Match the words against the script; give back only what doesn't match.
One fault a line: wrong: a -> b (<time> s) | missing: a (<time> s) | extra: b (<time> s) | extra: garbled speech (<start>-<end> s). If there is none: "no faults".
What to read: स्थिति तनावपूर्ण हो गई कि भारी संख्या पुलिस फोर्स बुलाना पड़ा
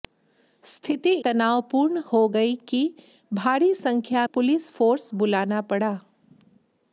no faults